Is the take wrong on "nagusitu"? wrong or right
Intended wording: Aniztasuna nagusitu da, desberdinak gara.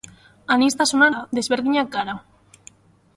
wrong